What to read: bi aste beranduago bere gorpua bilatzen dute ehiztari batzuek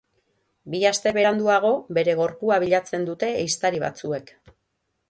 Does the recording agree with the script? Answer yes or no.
yes